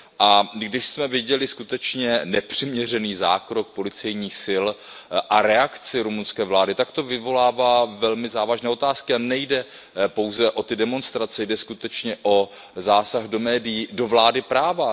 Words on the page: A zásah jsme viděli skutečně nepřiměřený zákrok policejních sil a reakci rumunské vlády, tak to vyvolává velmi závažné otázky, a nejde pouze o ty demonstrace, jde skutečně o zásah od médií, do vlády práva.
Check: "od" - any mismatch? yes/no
yes